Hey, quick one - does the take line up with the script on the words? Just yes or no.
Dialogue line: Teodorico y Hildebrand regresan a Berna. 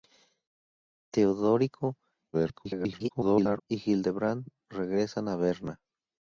no